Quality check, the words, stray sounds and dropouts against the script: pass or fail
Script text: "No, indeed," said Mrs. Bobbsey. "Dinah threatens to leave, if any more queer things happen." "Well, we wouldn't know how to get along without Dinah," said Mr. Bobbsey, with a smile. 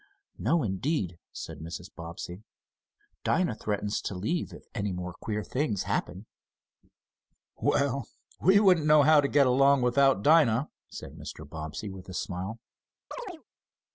fail